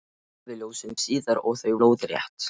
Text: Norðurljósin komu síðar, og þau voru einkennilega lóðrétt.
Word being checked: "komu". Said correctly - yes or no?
no